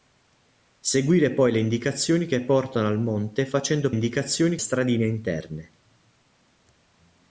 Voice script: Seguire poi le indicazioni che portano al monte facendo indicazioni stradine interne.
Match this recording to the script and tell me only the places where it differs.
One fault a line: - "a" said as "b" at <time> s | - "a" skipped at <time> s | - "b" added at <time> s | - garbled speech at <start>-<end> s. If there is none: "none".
none